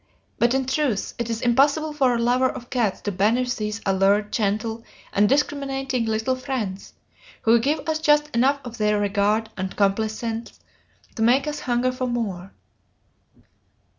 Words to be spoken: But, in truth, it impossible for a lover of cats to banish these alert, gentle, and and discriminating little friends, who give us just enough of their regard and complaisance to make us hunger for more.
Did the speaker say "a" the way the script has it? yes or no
yes